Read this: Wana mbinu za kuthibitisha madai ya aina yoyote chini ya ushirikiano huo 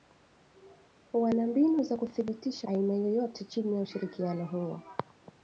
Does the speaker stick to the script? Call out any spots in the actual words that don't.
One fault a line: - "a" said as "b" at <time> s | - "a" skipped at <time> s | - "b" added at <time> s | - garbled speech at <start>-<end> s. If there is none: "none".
- "madai ya" skipped at 2.7 s